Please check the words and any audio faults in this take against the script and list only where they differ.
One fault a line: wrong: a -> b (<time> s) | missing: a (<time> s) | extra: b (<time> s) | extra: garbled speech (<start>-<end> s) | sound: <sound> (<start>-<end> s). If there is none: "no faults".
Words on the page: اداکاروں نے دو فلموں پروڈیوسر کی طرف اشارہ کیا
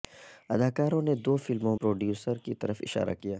no faults